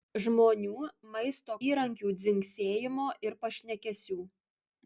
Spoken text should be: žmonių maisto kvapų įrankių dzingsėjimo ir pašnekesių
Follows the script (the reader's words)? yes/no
no